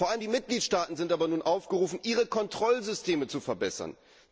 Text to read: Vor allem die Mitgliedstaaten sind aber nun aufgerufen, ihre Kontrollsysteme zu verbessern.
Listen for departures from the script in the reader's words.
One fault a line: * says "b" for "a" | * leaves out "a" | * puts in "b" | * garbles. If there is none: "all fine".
all fine